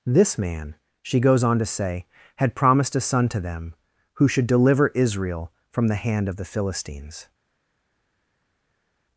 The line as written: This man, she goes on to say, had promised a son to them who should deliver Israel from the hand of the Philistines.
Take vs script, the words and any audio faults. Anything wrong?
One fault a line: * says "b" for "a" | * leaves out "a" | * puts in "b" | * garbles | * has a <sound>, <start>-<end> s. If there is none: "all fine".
all fine